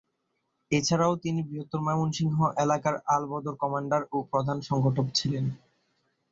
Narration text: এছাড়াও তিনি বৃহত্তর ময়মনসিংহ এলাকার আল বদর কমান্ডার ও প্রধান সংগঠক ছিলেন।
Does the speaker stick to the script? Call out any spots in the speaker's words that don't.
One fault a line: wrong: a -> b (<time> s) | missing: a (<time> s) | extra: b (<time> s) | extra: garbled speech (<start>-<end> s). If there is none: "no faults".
no faults